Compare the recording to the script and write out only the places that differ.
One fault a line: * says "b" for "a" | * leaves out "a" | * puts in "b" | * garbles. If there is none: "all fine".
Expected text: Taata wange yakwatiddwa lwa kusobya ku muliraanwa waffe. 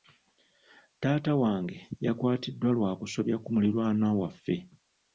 all fine